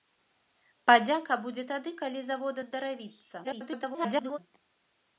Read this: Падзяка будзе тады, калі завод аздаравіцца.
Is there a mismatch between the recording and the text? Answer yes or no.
yes